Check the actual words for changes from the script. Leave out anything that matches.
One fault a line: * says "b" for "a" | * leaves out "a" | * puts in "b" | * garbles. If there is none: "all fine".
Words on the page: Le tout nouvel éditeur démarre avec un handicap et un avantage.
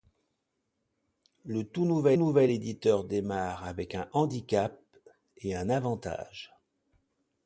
* puts in "nouvel"